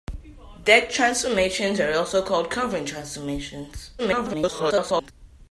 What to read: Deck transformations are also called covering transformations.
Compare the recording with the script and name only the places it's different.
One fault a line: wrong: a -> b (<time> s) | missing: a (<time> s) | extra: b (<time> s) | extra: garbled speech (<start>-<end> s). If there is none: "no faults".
extra: garbled speech (4.0-5.1 s)